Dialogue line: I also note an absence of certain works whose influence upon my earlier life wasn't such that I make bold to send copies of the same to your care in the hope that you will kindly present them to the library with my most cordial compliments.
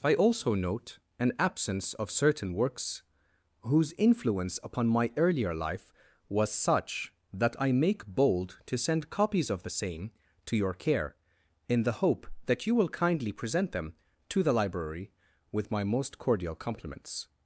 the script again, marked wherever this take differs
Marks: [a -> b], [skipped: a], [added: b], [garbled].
I also note an absence of certain works whose influence upon my earlier life [wasn't -> was] such that I make bold to send copies of the same to your care in the hope that you will kindly present them to the library with my most cordial compliments.